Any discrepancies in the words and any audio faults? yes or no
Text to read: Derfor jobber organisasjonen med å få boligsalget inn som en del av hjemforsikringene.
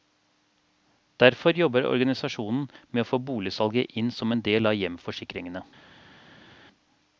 no